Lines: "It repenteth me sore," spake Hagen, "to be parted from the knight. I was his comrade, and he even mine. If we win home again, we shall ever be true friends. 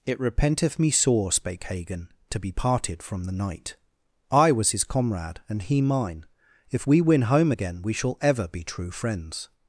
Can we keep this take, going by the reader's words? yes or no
no